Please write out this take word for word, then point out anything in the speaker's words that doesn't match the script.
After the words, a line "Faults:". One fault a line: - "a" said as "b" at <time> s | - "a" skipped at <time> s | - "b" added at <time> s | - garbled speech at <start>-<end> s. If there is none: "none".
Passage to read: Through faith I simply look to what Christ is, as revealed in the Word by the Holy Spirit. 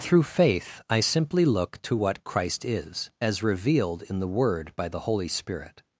Through faith I simply look to what Christ is, as revealed in the Word by the Holy Spirit.
Faults:
none